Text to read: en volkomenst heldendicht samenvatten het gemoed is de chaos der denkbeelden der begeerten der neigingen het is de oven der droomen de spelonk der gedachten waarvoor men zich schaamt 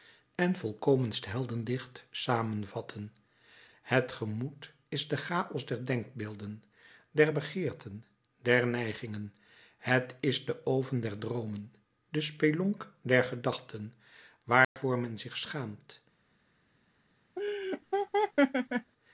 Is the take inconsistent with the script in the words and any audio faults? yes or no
yes